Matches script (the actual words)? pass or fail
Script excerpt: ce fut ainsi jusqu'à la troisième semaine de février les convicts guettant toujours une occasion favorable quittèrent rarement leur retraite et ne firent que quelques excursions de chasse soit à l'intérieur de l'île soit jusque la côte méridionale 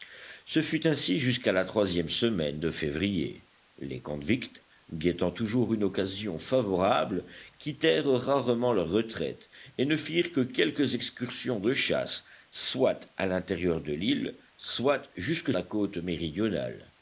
pass